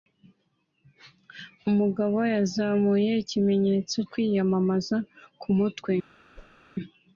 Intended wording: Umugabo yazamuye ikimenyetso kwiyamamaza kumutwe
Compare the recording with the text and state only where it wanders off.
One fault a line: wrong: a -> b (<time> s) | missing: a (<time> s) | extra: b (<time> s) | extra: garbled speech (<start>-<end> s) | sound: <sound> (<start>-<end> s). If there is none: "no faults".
sound: whoosh (6.3-6.6 s)